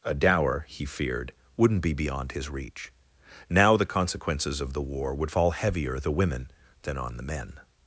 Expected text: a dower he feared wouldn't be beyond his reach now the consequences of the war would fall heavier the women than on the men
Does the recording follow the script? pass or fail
pass